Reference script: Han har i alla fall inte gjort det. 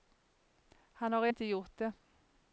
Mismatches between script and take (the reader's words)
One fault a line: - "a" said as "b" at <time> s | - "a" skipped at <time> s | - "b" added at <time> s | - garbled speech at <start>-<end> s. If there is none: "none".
- "alla fall" skipped at 1.3 s